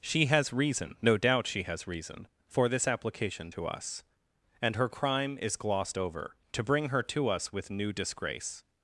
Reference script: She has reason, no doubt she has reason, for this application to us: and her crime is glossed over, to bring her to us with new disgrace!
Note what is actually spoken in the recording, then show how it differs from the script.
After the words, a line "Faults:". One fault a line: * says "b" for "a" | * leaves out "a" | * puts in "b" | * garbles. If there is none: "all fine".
She has reason, no doubt she has reason, for this application to us: and her crime is glossed over, to bring her to us with new disgrace!
Faults:
all fine